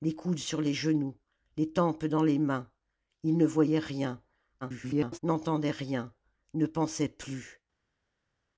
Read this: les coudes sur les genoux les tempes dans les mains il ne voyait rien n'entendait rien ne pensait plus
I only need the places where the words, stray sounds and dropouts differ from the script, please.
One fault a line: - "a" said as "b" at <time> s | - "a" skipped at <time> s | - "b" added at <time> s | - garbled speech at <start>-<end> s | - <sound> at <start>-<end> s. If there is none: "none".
- garbled speech at 4.6-5.2 s